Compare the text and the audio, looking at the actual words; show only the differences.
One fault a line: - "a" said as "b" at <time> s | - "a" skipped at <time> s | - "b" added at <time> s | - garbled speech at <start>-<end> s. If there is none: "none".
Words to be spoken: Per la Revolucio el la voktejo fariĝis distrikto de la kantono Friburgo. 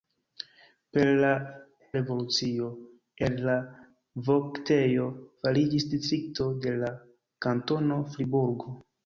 none